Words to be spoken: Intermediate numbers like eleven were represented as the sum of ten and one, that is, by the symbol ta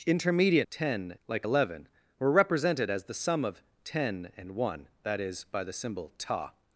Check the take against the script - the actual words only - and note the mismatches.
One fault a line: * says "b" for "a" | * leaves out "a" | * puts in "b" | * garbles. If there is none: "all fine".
* says "ten" for "numbers"